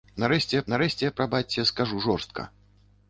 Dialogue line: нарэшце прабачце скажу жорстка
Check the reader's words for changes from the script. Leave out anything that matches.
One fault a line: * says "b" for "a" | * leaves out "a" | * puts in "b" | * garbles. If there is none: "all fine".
* puts in "нарэшце"